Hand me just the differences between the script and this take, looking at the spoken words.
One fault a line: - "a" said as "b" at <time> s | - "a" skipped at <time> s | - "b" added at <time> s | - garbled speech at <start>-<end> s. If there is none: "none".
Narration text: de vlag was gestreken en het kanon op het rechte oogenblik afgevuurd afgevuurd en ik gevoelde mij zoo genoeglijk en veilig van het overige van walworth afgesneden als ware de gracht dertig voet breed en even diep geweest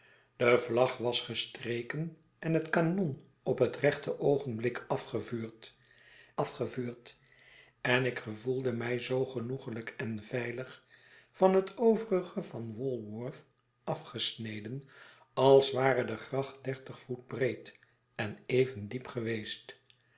none